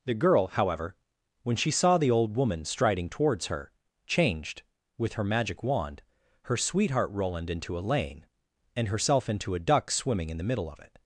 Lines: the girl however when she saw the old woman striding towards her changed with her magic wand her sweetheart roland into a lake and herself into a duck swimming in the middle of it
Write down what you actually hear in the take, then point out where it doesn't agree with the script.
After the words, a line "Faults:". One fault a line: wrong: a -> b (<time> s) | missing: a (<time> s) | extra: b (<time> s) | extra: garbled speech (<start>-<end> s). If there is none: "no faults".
the girl however when she saw the old woman striding towards her changed with her magic wand her sweetheart roland into a lane and herself into a duck swimming in the middle of it
Faults:
wrong: lake -> lane (7.8 s)